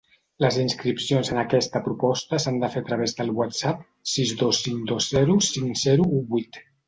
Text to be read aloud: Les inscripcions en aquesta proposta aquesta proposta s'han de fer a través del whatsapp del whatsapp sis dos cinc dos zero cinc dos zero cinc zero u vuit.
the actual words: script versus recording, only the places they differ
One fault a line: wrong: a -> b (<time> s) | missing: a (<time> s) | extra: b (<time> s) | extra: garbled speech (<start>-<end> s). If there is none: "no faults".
missing: aquesta proposta (2.4 s)
missing: del whatsapp (3.9 s)
missing: dos zero cinc (5.8 s)